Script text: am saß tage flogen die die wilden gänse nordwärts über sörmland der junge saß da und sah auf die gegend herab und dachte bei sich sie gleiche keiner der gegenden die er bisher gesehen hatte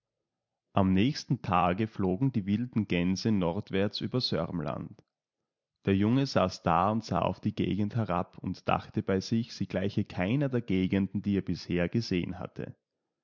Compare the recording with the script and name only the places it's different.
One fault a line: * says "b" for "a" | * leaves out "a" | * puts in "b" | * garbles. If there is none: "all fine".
* says "nächsten" for "saß"
* leaves out "die"